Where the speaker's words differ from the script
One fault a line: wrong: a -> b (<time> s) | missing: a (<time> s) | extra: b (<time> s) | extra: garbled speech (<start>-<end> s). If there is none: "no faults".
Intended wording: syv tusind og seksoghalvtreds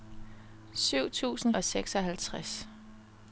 no faults